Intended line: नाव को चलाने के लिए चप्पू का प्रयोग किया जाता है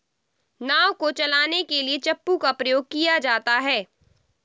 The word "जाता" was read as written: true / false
true